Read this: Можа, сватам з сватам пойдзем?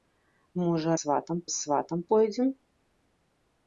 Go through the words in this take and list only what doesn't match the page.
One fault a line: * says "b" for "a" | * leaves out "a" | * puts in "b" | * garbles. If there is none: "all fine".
all fine